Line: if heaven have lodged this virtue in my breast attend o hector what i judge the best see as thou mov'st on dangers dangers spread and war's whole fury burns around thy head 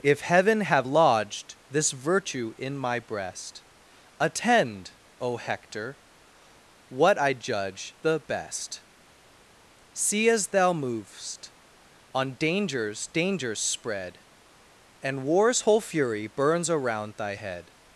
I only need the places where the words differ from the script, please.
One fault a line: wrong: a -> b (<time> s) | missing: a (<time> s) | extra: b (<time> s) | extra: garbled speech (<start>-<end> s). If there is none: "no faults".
no faults